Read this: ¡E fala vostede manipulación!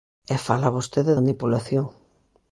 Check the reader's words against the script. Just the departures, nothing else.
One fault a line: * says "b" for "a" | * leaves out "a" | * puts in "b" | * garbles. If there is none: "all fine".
all fine